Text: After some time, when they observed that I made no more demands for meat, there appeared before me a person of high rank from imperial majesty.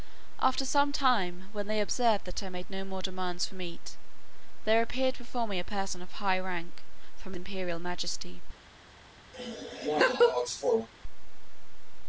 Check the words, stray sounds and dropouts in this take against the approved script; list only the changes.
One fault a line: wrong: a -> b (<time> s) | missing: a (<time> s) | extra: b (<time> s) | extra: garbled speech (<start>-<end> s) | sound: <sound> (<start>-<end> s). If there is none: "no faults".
sound: laugh (9.3-10.9 s)